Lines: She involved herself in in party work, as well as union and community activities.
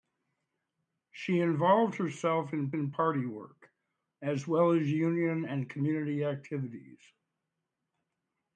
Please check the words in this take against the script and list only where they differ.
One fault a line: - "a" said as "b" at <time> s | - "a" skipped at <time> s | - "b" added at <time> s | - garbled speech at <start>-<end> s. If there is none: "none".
none